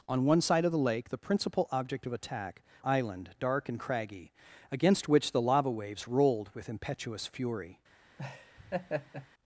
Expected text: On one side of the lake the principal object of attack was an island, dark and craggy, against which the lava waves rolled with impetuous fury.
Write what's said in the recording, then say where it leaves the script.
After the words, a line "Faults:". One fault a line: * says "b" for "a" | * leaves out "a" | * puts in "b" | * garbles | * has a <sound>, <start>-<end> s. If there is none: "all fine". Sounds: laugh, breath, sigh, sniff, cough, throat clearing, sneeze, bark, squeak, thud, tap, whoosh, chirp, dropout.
On one side of the lake the principal object of attack island, dark and craggy, against which the lava waves rolled with impetuous fury.
Faults:
* leaves out "was an"
* has a laugh, 8.2-9.3 s